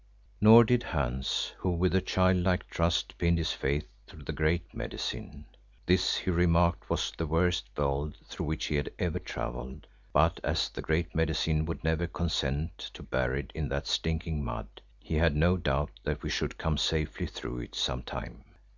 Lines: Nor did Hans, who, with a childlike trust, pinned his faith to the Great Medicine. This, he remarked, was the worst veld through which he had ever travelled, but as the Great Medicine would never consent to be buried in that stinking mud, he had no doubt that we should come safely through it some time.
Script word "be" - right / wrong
wrong